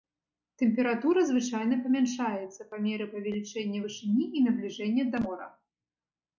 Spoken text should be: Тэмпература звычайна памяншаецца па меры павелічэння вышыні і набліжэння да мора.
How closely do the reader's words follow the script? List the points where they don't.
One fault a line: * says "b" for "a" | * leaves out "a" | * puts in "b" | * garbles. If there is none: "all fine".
all fine